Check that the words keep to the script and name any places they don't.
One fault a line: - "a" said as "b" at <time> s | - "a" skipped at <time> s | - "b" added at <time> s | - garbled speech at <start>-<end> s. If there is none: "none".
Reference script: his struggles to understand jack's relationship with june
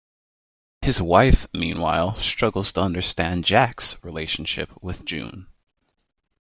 - "wife meanwhile" added at 1.0 s